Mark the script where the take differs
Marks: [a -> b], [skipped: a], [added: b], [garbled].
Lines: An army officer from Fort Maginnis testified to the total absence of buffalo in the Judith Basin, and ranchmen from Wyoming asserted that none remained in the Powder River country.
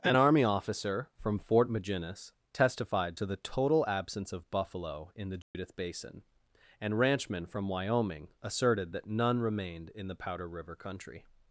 An army officer from Fort Maginnis testified to the total absence of buffalo in the Judith Basin, and ranchmen from Wyoming asserted that none remained in the Powder River country.